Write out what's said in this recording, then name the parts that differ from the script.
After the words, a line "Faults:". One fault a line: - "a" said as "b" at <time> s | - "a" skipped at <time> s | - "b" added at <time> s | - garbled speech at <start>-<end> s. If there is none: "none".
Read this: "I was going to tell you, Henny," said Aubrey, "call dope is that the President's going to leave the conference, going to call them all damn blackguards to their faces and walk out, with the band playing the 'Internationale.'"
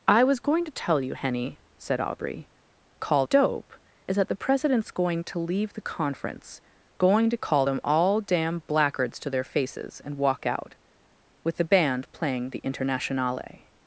"I was going to tell you, Henny," said Aubrey, "call dope is that the President's going to leave the conference, going to call them all damn blackguards to their faces and walk out, with the band playing the 'Internationale.'"
Faults:
none